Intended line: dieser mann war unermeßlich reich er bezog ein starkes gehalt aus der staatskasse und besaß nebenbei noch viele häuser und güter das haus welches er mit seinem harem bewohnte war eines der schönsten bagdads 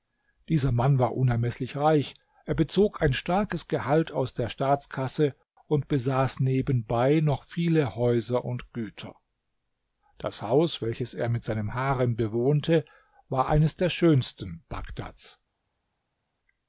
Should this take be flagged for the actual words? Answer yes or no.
no